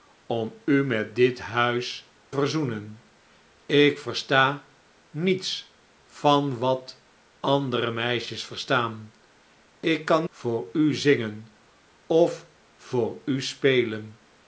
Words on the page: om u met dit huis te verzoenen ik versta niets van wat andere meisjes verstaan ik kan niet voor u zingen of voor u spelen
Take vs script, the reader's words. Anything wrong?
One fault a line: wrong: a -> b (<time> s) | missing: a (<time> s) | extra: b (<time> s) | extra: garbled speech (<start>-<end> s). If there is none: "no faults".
missing: te (2.1 s)
missing: niet (10.3 s)